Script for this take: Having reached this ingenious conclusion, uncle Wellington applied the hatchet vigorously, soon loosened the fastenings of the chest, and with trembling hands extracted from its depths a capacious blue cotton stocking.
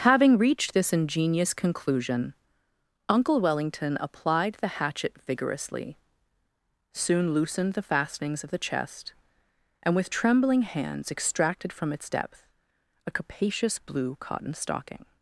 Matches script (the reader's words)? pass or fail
fail